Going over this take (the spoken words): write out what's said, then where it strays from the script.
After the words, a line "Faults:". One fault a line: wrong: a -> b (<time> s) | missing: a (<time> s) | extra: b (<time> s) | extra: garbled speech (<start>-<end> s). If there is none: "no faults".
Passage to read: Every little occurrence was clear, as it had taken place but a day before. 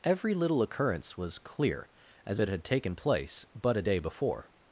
Every little occurrence was clear, as it had taken place but a day before.
Faults:
no faults